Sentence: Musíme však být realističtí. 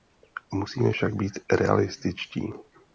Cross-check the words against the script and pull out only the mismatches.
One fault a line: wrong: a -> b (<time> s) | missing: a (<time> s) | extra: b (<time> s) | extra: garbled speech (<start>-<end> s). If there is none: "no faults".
no faults